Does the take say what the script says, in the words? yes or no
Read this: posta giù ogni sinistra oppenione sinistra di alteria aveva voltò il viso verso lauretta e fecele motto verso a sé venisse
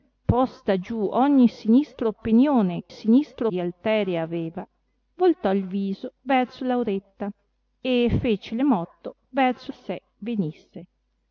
yes